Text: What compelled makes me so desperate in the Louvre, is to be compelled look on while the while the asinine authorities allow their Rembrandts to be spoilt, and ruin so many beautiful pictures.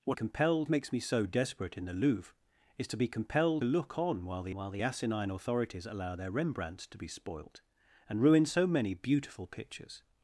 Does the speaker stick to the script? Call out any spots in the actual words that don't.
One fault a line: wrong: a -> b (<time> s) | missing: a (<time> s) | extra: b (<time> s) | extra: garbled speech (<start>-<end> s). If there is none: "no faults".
no faults